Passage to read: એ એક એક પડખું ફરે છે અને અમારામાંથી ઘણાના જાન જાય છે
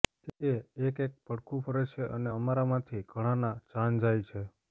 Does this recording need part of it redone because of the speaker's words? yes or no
no